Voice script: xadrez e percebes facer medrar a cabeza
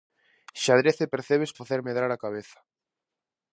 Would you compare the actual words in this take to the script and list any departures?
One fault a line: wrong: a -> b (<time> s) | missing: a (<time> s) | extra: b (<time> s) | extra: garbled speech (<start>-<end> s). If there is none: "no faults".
no faults